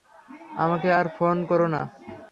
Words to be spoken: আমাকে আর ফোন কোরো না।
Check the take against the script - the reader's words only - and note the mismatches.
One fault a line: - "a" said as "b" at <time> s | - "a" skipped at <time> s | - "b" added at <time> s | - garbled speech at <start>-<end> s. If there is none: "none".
none